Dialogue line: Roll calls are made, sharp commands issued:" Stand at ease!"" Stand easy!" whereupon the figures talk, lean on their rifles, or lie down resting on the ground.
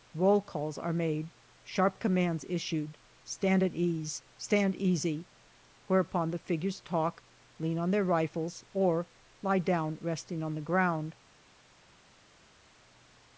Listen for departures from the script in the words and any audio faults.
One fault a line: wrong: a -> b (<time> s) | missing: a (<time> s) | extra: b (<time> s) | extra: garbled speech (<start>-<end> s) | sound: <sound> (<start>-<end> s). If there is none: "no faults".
no faults